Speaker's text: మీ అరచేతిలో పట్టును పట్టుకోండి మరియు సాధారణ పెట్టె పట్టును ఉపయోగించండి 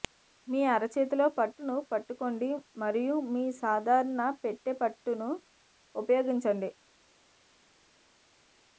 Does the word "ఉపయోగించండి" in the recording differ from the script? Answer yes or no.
no